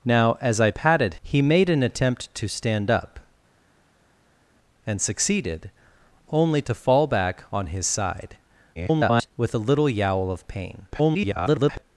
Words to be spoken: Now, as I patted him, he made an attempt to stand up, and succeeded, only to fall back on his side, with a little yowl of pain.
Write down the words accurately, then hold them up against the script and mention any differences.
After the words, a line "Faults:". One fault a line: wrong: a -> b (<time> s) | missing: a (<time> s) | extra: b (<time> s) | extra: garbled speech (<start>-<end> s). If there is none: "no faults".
Now, as I patted he made an attempt to stand up, and succeeded, only to fall back on his side, [garbled] with a little yowl of pain. [garbled]
Faults:
missing: him (1.2 s)
extra: garbled speech (8.7-9.3 s)
extra: garbled speech (10.9-11.8 s)